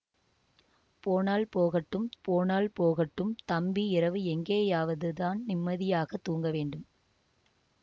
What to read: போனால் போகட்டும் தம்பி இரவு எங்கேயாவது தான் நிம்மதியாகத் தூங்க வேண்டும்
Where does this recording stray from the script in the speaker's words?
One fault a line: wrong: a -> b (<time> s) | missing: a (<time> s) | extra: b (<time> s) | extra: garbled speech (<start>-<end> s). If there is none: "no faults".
extra: போனால் போகட்டும் (2.2 s)